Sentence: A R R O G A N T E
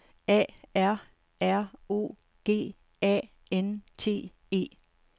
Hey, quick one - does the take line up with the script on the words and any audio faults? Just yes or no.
yes